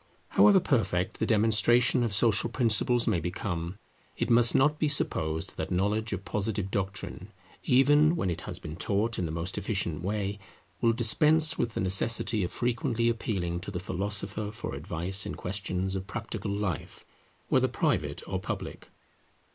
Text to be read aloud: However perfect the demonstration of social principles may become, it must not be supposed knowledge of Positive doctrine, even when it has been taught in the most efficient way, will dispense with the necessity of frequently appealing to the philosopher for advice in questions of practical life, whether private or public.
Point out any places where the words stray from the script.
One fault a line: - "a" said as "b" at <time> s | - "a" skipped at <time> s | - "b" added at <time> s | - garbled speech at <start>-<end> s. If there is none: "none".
- "that" added at 5.6 s